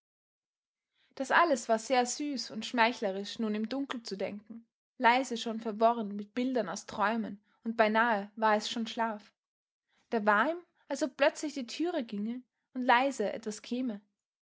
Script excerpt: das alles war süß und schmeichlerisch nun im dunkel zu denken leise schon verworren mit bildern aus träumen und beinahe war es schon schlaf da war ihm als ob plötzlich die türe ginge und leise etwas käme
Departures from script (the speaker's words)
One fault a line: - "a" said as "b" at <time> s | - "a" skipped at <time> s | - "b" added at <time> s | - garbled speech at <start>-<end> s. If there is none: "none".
- "sehr" added at 1.8 s